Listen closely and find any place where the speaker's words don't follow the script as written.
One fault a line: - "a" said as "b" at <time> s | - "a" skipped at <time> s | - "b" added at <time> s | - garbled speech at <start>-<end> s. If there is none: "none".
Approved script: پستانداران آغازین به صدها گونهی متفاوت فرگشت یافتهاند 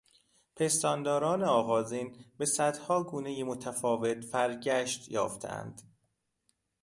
none